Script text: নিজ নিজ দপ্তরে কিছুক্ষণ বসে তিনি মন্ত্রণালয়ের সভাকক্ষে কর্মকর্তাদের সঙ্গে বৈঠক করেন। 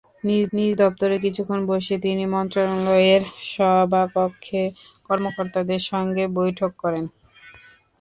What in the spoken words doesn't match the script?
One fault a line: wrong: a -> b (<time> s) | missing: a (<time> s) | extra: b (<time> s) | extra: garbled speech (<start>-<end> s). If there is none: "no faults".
no faults